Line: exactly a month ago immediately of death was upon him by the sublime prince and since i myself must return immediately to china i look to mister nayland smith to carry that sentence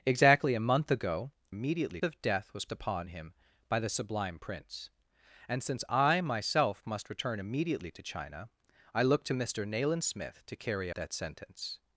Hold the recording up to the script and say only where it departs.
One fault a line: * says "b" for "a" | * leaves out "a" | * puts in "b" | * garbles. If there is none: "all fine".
all fine